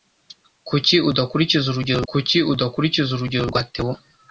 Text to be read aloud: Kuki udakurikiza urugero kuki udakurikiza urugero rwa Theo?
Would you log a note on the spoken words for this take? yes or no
no